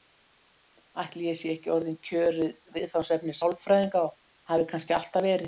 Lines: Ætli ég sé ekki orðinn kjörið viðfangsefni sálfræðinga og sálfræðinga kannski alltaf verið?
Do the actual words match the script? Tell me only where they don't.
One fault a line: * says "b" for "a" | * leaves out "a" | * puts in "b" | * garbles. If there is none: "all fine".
* says "hafi" for "sálfræðinga"